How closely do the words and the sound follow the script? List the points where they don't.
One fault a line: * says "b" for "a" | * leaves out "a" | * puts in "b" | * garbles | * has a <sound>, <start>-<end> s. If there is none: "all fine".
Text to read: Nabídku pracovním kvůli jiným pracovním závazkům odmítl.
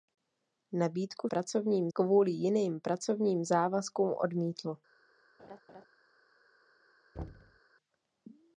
* has a laugh, 5.4-5.9 s
* has a thud, 7.1-7.6 s